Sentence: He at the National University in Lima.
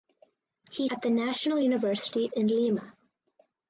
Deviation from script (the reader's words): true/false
false